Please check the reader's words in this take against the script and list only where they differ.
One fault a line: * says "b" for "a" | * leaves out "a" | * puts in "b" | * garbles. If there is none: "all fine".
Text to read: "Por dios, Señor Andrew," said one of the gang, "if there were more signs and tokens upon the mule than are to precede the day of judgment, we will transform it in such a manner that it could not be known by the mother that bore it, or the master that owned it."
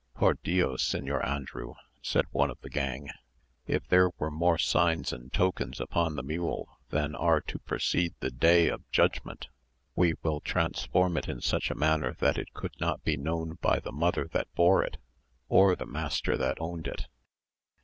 all fine